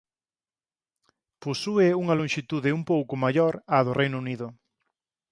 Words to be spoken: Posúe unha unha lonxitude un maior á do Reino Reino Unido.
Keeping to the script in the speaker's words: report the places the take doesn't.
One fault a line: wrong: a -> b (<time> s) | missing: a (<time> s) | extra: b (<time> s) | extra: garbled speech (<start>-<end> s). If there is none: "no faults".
missing: unha (2.1 s)
extra: pouco (2.9 s)
missing: Reino (4.2 s)